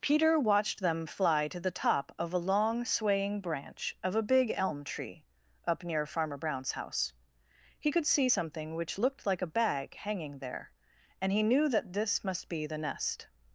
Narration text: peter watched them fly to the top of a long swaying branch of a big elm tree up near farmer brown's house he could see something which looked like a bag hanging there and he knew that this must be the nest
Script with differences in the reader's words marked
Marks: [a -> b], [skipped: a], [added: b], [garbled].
peter watched them fly to the top of a long swaying branch of a big elm tree up near farmer brown's house he could see something which looked like a bag hanging there and he knew that this must be the nest